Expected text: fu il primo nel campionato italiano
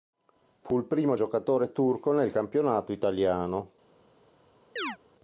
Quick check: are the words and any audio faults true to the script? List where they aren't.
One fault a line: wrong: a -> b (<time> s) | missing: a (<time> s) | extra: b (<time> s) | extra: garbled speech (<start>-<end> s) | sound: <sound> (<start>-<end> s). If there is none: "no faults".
extra: giocatore turco (1.1 s)
sound: chirp (4.8-5.0 s)